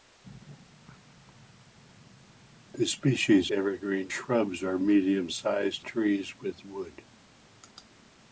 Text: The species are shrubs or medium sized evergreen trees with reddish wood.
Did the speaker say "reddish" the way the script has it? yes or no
no